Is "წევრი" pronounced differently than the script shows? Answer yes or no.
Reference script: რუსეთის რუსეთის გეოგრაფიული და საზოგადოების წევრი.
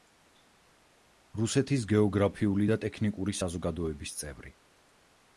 no